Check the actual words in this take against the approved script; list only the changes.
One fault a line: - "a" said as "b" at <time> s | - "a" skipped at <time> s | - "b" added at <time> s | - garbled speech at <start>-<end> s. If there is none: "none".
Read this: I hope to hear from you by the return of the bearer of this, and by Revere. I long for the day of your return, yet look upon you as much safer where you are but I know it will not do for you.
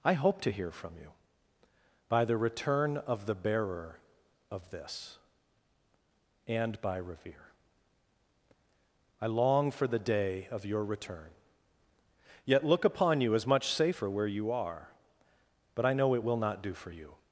none